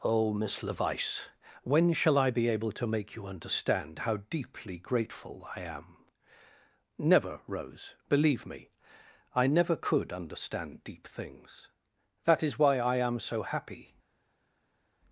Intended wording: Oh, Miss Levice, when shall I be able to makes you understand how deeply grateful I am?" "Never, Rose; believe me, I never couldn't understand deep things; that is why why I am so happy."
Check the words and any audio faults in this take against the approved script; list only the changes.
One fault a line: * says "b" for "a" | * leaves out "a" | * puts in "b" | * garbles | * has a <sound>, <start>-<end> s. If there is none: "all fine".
* says "make" for "makes"
* says "could" for "couldn't"
* leaves out "why"